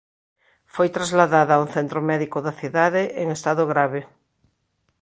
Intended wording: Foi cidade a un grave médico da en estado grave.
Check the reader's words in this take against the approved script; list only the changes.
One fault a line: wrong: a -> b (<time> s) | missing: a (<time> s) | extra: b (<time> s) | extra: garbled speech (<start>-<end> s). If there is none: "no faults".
wrong: cidade -> trasladada (0.9 s)
wrong: grave -> centro (1.8 s)
extra: cidade (2.6 s)